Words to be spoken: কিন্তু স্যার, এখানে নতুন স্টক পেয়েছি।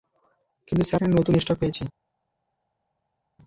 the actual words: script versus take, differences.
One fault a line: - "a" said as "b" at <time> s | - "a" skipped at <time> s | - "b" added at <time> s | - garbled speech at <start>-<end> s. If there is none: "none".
none